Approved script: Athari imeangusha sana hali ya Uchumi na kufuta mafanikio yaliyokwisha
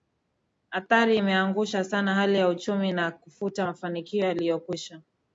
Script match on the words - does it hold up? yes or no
yes